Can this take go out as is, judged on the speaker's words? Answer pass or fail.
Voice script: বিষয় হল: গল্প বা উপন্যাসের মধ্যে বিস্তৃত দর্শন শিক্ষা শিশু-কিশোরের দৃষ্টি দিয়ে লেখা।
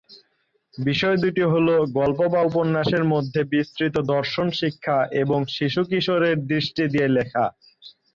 fail